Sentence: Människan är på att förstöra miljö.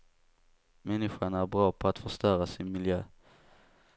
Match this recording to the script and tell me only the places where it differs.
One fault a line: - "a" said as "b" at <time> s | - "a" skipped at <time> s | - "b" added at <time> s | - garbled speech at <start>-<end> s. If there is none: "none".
- "bra" added at 1.5 s
- "sin" added at 2.5 s